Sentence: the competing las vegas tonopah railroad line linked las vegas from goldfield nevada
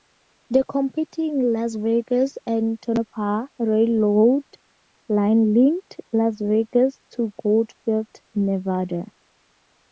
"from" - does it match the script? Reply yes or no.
no